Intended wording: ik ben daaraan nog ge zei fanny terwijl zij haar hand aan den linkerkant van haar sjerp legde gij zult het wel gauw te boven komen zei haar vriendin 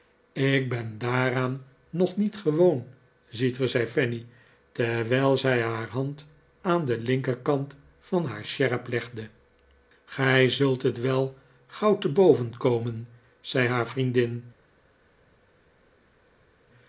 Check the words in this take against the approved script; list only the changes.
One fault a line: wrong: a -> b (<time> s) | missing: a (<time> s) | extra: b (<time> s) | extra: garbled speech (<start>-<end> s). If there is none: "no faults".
extra: niet gewoon ziet (2.2 s)